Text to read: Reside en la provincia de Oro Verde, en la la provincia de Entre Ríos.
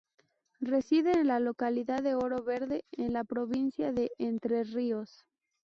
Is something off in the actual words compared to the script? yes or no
yes